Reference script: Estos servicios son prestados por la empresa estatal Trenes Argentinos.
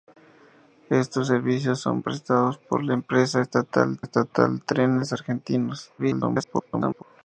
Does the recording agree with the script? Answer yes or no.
no